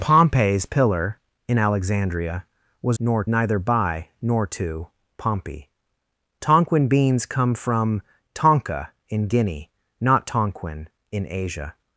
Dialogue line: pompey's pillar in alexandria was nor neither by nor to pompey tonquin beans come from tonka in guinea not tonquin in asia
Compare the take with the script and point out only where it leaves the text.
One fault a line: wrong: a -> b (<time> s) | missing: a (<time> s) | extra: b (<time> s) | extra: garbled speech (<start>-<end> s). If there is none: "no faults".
no faults